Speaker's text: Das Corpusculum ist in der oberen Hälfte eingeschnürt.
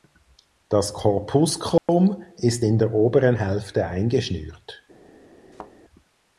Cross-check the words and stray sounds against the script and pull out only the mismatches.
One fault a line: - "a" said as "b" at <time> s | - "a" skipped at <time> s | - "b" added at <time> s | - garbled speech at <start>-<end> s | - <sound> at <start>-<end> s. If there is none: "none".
- dropout at 1.8-1.9 s
- thud at 5.5-5.7 s